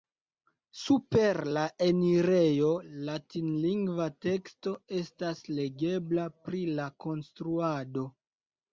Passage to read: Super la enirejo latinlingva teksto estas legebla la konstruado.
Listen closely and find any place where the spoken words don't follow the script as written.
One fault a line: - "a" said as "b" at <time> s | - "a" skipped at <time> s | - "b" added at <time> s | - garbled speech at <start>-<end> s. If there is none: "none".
- "pri" added at 6.5 s